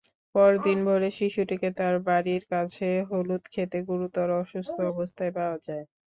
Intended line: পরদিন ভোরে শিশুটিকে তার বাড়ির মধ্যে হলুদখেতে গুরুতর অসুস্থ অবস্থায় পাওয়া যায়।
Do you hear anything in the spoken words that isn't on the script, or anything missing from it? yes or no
yes